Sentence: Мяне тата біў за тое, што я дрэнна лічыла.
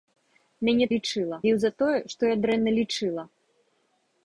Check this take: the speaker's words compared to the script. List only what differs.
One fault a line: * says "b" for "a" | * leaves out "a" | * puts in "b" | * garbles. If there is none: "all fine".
* says "лічыла" for "тата"